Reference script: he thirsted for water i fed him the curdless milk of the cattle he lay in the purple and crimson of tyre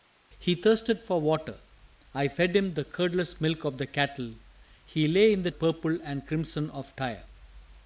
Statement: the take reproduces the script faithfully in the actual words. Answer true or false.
true